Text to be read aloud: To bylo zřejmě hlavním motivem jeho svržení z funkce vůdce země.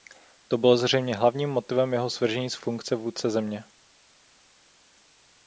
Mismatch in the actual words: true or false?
false